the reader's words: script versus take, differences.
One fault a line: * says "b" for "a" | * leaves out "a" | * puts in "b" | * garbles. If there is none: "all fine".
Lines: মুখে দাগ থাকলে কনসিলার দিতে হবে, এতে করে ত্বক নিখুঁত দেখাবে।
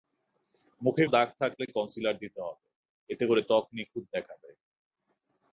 all fine